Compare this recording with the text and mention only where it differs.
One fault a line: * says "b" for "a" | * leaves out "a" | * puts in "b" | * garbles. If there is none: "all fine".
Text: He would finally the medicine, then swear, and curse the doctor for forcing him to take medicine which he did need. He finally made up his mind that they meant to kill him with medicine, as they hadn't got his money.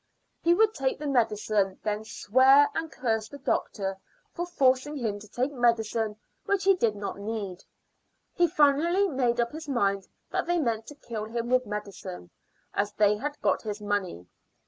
* says "take" for "finally"
* puts in "not"
* says "had" for "hadn't"